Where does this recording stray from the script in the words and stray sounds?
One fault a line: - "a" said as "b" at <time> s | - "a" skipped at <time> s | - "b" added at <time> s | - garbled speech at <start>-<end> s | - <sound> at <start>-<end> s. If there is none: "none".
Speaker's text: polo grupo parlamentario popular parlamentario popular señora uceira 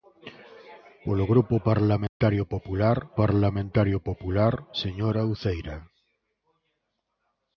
- dropout at 2.1-2.2 s